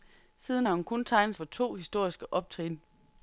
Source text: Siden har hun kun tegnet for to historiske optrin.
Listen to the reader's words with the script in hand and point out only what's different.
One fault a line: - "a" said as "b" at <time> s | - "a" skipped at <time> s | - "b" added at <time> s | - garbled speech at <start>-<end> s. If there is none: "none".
none